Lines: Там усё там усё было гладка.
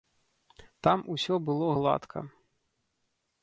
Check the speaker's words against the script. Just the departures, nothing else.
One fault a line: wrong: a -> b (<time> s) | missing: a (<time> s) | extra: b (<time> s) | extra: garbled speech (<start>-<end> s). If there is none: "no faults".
missing: там усё (1.4 s)